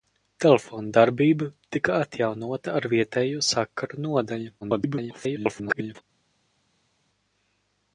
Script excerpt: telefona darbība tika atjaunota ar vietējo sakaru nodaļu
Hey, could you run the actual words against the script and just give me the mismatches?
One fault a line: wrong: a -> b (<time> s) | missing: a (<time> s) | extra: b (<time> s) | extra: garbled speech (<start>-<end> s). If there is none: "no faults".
extra: garbled speech (4.6-6.0 s)